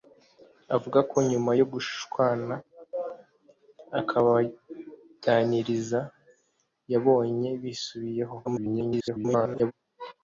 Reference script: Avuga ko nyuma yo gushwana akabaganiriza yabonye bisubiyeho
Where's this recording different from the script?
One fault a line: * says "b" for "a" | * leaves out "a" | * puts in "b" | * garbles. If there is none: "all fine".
* garbles